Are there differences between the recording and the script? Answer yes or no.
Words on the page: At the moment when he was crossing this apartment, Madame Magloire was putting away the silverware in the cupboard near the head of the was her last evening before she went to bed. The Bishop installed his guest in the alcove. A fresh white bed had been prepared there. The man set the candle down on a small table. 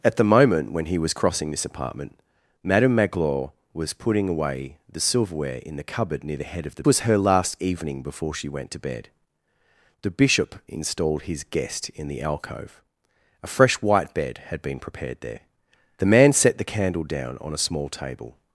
no